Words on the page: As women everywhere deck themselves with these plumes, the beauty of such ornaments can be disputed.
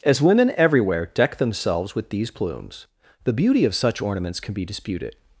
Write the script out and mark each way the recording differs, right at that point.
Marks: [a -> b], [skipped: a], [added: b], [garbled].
As women everywhere deck themselves with these plumes, the beauty of such ornaments can be disputed.